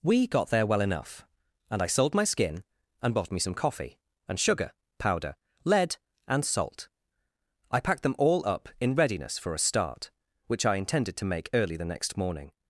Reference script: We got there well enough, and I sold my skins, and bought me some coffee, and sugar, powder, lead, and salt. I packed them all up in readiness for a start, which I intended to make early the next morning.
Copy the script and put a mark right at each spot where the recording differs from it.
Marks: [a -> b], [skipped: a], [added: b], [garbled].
We got there well enough, and I sold my [skins, -> skin] and bought me some coffee, and sugar, powder, lead, and salt. I packed them all up in readiness for a start, which I intended to make early the next morning.